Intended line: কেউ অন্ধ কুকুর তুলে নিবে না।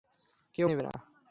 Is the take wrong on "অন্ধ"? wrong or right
wrong